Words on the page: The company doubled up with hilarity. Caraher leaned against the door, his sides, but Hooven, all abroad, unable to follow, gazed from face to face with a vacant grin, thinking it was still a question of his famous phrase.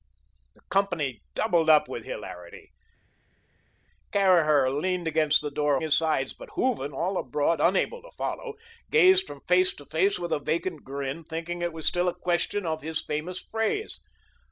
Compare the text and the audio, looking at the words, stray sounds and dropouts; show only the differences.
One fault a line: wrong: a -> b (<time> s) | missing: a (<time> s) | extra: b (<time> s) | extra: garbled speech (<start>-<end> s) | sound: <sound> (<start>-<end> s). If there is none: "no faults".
no faults